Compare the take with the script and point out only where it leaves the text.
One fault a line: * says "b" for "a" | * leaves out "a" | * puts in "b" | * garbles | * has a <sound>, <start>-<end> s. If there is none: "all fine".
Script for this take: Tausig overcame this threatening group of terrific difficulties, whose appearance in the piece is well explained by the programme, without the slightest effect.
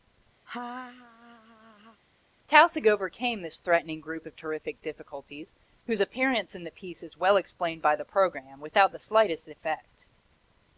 * has a laugh, 0.5-2.0 s